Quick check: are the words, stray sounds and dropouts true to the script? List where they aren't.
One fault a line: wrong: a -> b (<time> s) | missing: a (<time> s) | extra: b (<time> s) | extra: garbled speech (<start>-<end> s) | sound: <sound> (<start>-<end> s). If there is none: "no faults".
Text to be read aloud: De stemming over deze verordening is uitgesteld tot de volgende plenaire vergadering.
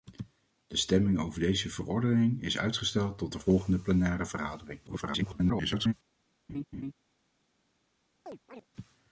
extra: garbled speech (4.9-5.9 s)
sound: laugh (6.5-6.9 s)
sound: chirp (8.3-8.7 s)